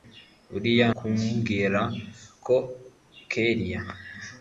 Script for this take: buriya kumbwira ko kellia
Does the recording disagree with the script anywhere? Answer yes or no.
no